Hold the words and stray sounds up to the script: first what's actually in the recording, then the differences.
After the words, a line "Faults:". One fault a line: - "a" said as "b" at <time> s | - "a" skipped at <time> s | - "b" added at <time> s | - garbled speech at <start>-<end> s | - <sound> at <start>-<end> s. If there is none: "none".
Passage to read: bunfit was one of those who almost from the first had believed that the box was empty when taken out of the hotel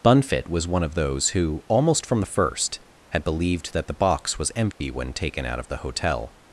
bunfit was one of those who almost from the first had believed that the box was empty when taken out of the hotel
Faults:
- dropout at 4.7-4.8 s